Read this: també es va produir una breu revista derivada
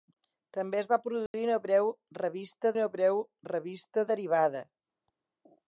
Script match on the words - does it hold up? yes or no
no